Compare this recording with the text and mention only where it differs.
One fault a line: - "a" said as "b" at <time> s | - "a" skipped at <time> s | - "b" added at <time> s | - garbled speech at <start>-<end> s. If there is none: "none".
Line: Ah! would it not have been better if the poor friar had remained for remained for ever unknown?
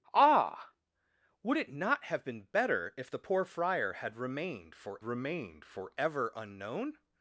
none